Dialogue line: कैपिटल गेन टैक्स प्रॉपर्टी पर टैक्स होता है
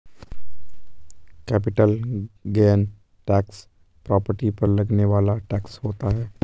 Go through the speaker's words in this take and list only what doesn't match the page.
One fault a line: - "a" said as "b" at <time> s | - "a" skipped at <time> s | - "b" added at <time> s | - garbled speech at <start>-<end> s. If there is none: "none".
- "लगने वाला" added at 4.7 s